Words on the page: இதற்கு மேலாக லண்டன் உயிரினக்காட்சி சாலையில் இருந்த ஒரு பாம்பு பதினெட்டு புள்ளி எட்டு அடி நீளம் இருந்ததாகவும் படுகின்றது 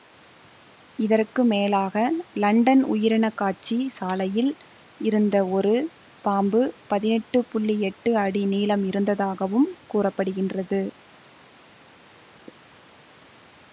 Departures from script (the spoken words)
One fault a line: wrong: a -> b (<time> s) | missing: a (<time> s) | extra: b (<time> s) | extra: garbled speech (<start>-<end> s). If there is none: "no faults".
extra: கூற (9.9 s)